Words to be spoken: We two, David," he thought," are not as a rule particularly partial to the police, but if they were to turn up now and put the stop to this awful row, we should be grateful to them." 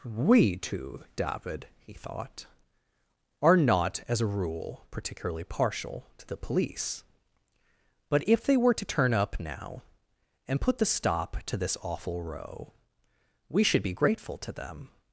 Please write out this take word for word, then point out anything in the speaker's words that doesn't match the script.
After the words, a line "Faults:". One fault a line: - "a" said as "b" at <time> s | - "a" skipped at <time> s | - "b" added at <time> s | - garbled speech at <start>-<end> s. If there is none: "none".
We two, David," he thought," are not as a rule particularly partial to the police, but if they were to turn up now and put the stop to this awful row, we should be grateful to them."
Faults:
none